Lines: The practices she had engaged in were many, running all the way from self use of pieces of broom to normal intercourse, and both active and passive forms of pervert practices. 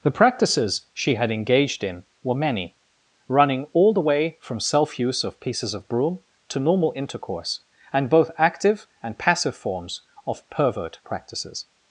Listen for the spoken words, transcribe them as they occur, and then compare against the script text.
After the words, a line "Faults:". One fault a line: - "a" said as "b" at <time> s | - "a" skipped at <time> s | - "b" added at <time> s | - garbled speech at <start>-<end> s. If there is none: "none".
The practices she had engaged in were many, running all the way from self use of pieces of broom to normal intercourse, and both active and passive forms of pervert practices.
Faults:
none